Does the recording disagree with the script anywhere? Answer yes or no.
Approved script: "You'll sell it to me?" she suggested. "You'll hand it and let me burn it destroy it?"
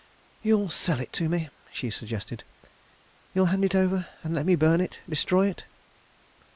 yes